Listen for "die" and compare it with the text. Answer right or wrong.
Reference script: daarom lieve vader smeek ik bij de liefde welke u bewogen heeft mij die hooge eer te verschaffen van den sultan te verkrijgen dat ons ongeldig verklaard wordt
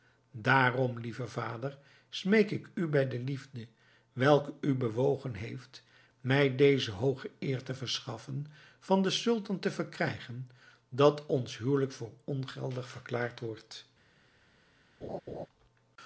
wrong